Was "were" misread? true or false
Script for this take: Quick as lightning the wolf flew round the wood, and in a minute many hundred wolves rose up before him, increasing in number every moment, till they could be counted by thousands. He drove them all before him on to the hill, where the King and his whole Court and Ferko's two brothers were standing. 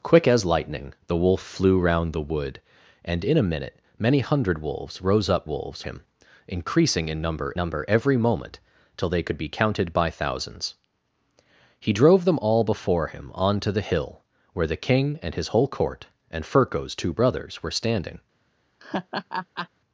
false